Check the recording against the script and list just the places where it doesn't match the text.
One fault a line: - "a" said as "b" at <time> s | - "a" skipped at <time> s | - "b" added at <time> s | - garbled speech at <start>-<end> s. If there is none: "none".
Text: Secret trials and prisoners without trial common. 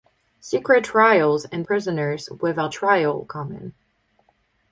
none